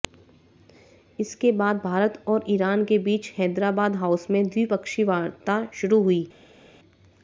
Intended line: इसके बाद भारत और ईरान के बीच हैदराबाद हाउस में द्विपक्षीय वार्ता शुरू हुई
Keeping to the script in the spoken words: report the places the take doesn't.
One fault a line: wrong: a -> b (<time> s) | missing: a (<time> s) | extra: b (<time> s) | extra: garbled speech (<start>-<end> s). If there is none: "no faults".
no faults